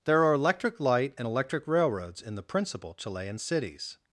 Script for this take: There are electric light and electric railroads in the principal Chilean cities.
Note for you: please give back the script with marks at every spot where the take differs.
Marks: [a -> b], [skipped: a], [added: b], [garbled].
There are electric light and electric railroads in the principal Chilean cities.